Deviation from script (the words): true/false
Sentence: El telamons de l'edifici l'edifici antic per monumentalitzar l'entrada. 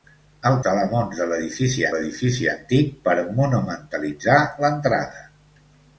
false